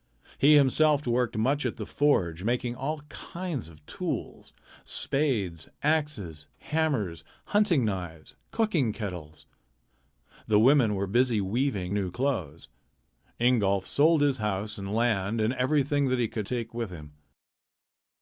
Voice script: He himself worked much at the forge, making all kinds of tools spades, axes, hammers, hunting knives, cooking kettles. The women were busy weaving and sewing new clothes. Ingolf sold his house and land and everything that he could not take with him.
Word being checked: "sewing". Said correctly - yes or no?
no